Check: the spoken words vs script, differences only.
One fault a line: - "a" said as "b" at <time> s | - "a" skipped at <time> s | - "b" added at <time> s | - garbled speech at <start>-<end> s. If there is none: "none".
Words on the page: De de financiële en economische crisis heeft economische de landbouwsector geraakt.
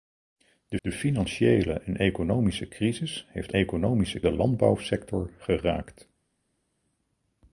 none